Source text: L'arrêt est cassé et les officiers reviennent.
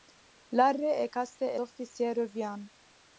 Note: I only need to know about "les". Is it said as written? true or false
false